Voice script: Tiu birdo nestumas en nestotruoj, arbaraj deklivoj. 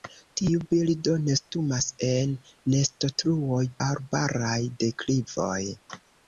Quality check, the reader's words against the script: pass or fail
pass